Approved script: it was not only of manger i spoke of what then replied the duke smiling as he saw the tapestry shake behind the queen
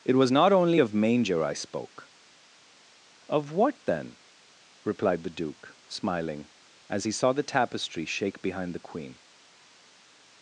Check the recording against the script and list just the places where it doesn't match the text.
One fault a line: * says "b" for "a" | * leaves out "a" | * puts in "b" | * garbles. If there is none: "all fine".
all fine